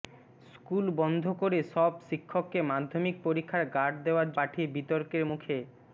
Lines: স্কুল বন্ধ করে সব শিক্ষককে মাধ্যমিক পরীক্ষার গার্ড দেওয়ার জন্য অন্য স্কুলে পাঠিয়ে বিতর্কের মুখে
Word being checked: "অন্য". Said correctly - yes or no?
no